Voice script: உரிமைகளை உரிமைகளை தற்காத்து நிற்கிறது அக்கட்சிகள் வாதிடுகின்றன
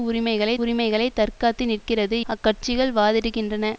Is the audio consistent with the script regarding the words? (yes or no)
yes